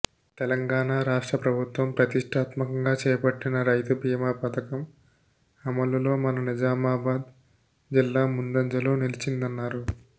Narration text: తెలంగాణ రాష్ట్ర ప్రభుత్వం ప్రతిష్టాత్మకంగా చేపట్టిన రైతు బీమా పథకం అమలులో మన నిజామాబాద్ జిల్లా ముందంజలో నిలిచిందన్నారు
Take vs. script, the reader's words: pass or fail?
pass